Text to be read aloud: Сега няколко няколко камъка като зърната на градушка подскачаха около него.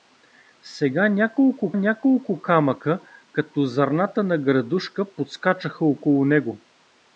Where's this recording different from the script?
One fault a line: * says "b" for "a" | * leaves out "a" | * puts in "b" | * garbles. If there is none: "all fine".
all fine